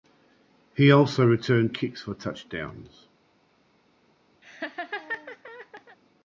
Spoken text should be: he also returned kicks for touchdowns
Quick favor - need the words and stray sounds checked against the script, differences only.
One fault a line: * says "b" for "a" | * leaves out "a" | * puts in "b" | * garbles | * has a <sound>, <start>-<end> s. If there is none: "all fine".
* has a laugh, 4.4-6.0 s